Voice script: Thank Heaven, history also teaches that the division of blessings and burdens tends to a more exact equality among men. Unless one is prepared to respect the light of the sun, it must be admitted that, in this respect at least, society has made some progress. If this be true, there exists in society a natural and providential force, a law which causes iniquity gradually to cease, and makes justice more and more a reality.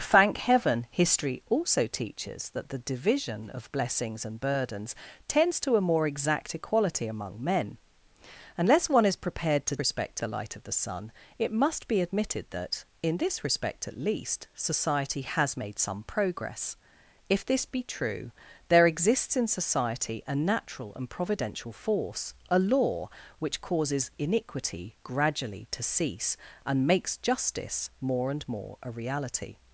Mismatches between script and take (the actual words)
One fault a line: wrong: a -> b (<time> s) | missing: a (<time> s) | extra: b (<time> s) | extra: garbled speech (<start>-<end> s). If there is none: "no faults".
no faults